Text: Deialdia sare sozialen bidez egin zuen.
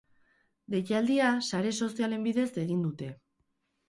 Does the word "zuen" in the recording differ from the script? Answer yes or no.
yes